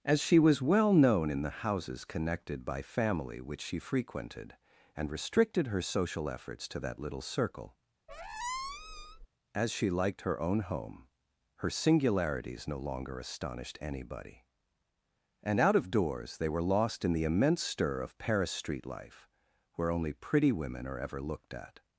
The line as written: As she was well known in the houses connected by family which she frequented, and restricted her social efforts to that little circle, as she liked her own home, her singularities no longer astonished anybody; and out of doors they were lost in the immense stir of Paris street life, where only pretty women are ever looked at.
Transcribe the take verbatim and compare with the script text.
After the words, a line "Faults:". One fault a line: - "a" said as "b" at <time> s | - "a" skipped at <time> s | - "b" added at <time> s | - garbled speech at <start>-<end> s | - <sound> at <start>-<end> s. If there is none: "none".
As she was well known in the houses connected by family which she frequented, and restricted her social efforts to that little circle, as she liked her own home, her singularities no longer astonished anybody; and out of doors they were lost in the immense stir of Paris street life, where only pretty women are ever looked at.
Faults:
- squeak at 8.1-9.3 s